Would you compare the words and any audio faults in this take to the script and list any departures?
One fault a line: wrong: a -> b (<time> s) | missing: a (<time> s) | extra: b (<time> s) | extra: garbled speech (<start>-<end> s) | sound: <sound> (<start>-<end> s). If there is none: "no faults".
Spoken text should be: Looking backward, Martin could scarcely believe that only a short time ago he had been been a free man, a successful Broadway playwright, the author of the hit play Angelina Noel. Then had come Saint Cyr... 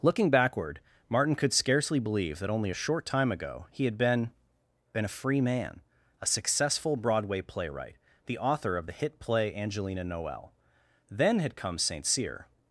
no faults